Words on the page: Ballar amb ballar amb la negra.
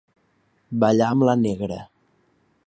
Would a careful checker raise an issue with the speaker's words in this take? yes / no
yes